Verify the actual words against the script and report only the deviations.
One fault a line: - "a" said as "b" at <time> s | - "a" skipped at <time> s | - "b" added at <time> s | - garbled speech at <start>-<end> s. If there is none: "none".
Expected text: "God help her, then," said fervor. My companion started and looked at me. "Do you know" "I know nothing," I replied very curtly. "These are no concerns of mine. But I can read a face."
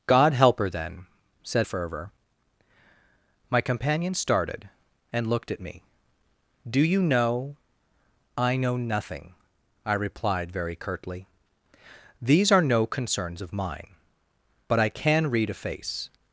none